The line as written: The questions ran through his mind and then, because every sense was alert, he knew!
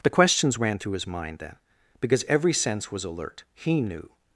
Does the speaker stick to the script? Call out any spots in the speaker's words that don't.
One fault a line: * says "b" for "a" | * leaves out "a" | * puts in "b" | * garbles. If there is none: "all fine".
* leaves out "and"